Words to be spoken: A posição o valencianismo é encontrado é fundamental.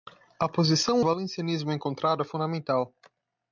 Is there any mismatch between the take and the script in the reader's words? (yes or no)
no